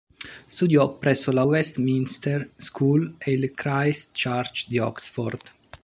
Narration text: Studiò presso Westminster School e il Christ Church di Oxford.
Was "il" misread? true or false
false